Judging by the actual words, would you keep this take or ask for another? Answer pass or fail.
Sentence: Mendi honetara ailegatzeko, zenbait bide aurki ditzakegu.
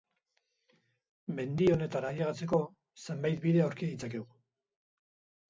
pass